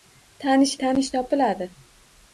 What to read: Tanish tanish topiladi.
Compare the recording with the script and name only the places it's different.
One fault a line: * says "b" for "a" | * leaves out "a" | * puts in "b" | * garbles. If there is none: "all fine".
all fine